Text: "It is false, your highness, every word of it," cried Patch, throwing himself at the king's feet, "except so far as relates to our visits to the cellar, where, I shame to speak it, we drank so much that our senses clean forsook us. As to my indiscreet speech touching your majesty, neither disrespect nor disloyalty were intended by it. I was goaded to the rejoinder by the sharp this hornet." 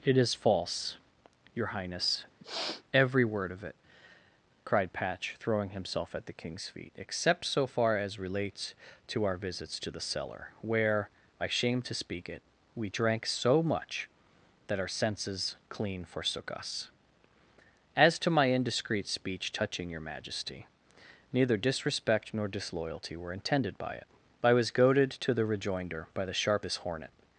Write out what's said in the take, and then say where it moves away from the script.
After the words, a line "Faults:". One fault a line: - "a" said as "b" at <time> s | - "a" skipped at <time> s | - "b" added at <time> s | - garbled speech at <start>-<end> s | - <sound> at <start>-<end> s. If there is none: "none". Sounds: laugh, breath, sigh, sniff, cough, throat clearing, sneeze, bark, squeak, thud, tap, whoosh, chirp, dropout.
"It is false, your highness, every word of it," cried Patch, throwing himself at the king's feet, "except so far as relates to our visits to the cellar, where, I shame to speak it, we drank so much that our senses clean forsook us. As to my indiscreet speech touching your majesty, neither disrespect nor disloyalty were intended by it. I was goaded to the rejoinder by the sharp this hornet."
Faults:
- sniff at 2.4-2.8 s